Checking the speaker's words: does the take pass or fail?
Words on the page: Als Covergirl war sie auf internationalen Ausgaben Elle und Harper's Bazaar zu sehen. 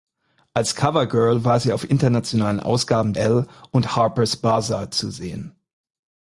pass